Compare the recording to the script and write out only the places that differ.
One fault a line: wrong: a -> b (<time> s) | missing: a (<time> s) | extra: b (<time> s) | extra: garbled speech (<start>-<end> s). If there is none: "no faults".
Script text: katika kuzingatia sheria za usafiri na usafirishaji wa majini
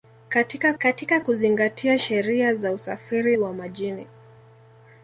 extra: katika (0.8 s)
missing: na usafirishaji (3.4 s)